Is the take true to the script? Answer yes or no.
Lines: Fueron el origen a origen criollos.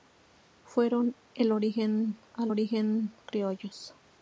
yes